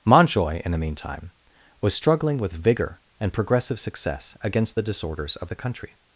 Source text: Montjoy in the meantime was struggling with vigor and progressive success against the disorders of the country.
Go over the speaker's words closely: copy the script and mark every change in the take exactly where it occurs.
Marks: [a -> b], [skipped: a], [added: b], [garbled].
Montjoy in the meantime was struggling with vigor and progressive success against the disorders of the country.